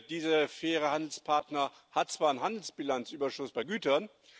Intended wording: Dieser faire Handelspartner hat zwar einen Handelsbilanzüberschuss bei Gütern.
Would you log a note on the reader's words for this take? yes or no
no